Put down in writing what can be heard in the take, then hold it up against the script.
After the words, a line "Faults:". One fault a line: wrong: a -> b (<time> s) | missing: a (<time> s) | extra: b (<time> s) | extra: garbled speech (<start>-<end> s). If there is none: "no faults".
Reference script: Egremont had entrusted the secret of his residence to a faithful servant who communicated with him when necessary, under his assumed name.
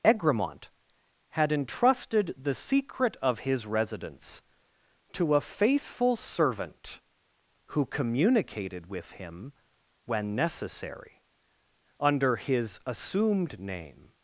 Egremont had entrusted the secret of his residence to a faithful servant who communicated with him when necessary, under his assumed name.
Faults:
no faults